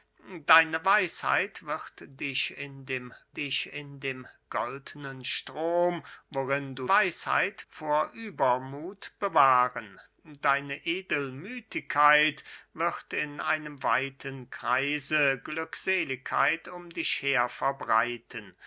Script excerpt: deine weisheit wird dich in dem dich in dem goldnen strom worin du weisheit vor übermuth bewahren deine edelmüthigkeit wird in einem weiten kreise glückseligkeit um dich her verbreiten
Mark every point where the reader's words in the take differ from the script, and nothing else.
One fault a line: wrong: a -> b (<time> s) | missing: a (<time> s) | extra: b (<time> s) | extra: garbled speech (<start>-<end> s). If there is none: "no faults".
no faults